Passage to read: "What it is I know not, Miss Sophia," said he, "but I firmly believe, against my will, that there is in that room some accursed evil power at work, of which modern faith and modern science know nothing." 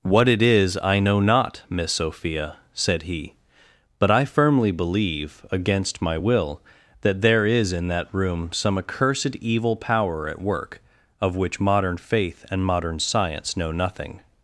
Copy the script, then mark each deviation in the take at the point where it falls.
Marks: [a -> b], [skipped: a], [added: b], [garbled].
"What it is I know not, Miss Sophia," said he, "but I firmly believe, against my will, that there is in that room some accursed evil power at work, of which modern faith and modern science know nothing."